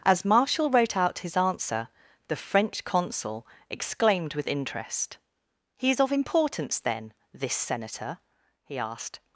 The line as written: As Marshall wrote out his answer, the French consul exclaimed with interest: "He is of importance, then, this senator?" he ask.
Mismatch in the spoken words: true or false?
true